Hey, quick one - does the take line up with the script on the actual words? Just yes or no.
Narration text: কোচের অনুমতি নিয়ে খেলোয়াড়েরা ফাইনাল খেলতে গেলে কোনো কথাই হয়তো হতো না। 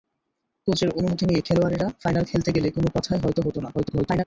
no